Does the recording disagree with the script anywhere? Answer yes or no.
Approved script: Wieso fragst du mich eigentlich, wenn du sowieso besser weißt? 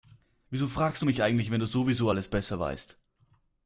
yes